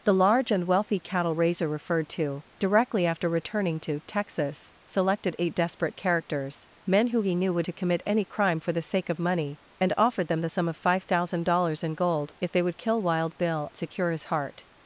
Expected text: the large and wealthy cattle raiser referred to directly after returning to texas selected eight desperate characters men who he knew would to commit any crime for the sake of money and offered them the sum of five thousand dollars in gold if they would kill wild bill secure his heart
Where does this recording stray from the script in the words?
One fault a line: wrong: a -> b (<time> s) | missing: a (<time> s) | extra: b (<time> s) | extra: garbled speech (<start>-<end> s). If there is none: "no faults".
no faults